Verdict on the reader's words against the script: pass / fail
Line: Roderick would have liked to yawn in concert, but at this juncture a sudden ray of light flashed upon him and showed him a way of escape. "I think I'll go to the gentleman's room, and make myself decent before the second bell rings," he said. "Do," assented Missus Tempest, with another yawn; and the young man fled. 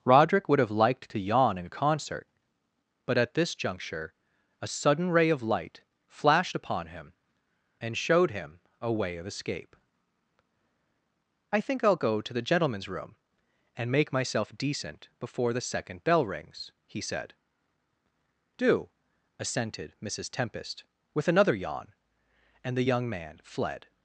pass